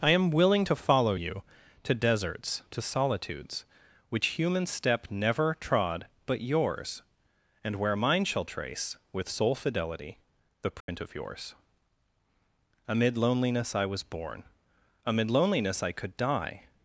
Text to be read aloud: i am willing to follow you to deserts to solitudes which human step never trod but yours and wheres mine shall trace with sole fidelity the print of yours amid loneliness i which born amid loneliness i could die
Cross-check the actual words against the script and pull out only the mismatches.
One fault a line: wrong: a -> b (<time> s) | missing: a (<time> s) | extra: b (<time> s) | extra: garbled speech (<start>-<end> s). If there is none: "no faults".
wrong: wheres -> where (7.8 s)
wrong: which -> was (13.9 s)